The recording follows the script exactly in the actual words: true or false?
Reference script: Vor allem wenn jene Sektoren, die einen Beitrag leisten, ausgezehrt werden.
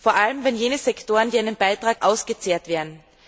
false